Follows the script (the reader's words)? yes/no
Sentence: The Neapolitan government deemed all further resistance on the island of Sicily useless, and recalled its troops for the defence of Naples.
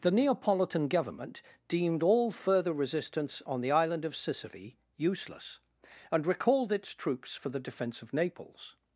yes